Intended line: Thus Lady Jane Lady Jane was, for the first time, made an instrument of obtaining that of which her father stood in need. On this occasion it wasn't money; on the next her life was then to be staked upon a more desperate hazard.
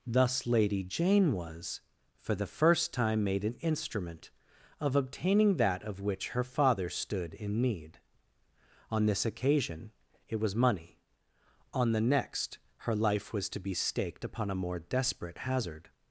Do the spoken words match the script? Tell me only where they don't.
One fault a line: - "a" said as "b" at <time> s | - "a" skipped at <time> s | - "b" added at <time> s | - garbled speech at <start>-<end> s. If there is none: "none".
- "Lady Jane" skipped at 1.3 s
- "wasn't" said as "was" at 10.4 s
- "then" skipped at 13.5 s